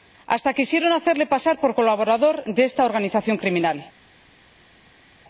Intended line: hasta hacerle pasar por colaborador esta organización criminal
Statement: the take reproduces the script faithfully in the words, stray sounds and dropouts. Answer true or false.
false